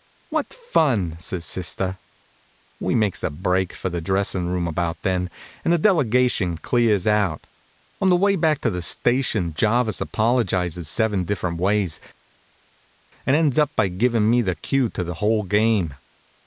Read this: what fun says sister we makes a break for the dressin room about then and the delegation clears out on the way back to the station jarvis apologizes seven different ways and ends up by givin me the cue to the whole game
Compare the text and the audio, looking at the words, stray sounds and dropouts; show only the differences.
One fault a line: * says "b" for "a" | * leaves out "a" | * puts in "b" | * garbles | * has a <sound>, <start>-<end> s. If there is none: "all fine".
all fine